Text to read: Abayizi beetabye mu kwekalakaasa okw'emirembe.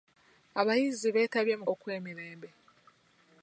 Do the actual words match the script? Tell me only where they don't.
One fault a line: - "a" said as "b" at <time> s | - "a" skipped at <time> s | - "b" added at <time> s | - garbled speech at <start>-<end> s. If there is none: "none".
- "kwekalakaasa" skipped at 1.6 s